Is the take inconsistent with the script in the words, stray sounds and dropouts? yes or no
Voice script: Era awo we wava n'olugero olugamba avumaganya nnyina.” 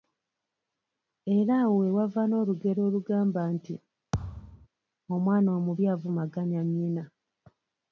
yes